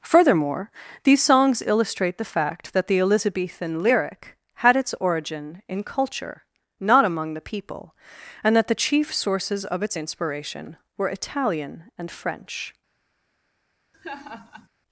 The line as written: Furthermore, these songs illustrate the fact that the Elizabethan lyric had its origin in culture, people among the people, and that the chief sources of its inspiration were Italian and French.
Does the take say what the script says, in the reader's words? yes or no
no